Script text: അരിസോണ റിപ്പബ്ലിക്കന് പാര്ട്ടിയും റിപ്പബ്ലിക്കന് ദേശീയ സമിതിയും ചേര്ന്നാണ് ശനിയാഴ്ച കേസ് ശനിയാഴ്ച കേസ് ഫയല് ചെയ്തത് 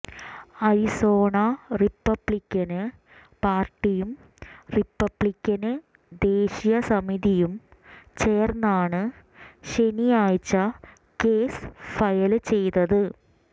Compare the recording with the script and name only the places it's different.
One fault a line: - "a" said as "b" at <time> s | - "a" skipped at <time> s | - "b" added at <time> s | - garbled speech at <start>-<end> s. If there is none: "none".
- "ശനിയാഴ്ച കേസ്" skipped at 11.6 s